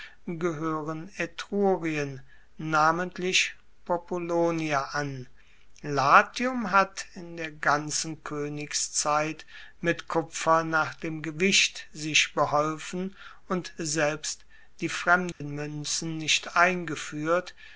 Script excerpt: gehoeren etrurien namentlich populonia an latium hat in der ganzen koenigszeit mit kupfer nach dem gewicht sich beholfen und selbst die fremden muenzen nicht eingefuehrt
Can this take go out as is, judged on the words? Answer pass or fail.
pass